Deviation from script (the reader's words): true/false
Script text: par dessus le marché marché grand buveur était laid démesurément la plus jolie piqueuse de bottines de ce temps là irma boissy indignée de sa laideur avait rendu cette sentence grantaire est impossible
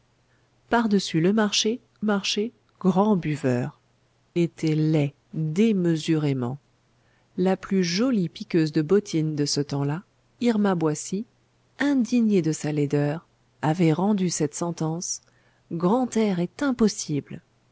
false